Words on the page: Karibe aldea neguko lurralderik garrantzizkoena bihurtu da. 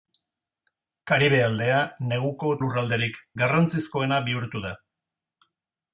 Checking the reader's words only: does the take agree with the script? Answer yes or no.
yes